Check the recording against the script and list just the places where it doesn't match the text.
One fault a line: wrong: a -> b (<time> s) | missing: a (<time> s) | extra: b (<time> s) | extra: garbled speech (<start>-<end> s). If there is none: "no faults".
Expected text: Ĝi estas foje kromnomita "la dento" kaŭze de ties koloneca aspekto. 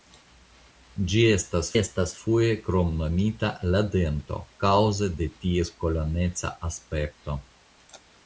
extra: estas (1.8 s)